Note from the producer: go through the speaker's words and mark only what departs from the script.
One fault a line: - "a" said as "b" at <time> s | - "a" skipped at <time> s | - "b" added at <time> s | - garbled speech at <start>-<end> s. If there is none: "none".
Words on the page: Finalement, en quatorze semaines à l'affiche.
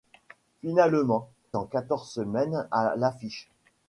none